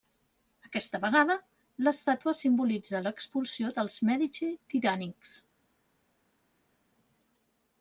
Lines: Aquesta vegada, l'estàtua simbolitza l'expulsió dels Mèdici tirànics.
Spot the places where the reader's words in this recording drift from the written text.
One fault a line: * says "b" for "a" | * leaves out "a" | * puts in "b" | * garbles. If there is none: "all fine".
all fine